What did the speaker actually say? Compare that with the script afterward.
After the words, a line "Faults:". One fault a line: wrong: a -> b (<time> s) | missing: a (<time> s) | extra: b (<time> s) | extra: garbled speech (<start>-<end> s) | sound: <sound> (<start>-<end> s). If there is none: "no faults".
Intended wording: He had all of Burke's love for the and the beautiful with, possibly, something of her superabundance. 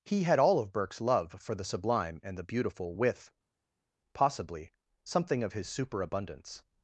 He had all of Burke's love for the sublime and the beautiful with, possibly, something of his superabundance.
Faults:
extra: sublime (1.6 s)
wrong: her -> his (5.5 s)